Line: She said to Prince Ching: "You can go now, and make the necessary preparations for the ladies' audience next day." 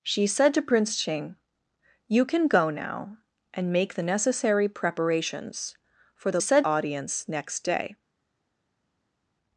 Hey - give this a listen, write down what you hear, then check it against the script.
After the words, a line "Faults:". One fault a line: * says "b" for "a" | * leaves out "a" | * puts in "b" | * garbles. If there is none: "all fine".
She said to Prince Ching: "You can go now, and make the necessary preparations for the said' audience next day."
Faults:
* says "said" for "ladies"